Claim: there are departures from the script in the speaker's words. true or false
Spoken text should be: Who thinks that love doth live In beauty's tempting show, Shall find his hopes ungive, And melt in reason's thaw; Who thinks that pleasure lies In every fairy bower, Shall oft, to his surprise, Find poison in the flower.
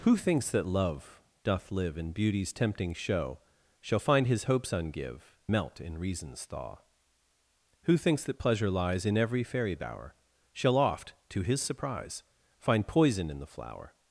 true